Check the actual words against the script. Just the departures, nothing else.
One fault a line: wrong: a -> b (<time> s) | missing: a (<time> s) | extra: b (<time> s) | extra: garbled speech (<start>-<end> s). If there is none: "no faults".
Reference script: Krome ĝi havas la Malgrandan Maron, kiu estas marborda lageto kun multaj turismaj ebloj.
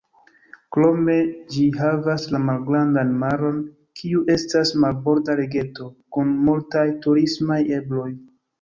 no faults